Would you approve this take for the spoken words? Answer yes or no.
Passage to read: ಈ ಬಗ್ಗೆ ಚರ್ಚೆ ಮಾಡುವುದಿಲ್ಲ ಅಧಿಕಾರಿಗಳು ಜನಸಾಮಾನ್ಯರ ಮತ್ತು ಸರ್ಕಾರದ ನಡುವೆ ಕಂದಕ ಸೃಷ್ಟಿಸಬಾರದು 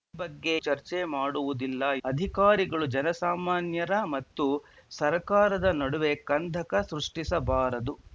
yes